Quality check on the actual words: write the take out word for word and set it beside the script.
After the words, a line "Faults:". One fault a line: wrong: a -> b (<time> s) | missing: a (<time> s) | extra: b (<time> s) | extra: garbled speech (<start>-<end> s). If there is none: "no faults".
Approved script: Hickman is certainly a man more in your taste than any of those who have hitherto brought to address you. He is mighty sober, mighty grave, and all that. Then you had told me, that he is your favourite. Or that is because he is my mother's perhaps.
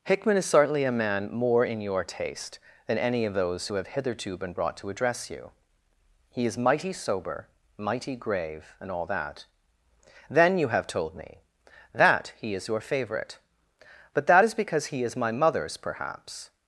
Hickman is certainly a man more in your taste than any of those who have hitherto been brought to address you. He is mighty sober, mighty grave, and all that. Then you have told me, that he is your favourite. But that is because he is my mother's perhaps.
Faults:
extra: been (4.4 s)
wrong: had -> have (10.7 s)
wrong: Or -> But (14.1 s)